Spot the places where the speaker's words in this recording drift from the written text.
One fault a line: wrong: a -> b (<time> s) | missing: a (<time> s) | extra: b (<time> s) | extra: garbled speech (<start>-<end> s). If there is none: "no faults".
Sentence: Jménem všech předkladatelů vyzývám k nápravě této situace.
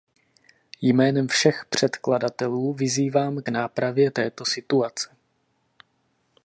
no faults